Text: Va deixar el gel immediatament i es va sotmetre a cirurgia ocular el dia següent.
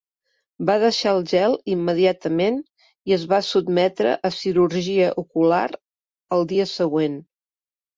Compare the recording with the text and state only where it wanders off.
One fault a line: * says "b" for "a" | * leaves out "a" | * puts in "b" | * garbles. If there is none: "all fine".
all fine